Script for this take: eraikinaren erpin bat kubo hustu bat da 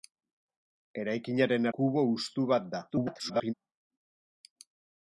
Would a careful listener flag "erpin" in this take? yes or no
yes